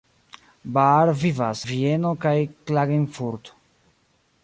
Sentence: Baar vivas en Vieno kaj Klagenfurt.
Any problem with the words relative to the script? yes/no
yes